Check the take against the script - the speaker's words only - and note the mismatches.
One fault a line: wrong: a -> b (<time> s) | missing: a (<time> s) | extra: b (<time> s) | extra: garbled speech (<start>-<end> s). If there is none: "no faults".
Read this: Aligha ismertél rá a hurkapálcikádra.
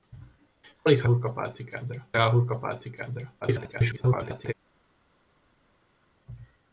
wrong: ismertél -> hurkapálcikádra (1.0 s)
extra: garbled speech (3.4-4.5 s)